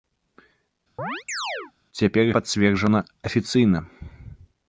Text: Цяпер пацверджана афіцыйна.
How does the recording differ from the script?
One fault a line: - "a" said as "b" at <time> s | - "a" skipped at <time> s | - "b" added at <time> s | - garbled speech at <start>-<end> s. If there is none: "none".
none